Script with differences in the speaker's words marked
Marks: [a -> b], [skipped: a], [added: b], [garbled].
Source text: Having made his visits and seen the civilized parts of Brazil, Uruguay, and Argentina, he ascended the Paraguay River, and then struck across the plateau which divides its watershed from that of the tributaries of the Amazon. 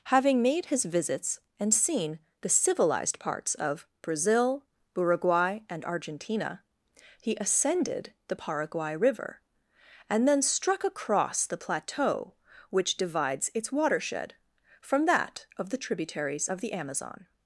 Having made his visits and seen the civilized parts of Brazil, Uruguay, and Argentina, he ascended the Paraguay River, and then struck across the plateau which divides its watershed from that of the tributaries of the Amazon.